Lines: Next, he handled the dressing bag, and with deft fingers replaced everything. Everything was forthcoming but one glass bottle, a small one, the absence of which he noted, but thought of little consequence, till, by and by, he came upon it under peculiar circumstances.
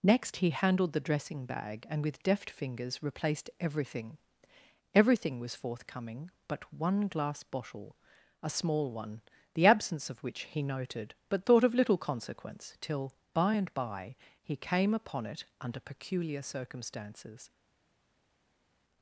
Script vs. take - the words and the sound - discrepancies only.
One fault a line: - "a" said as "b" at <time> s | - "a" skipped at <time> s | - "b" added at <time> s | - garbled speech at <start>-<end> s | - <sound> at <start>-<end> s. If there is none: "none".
none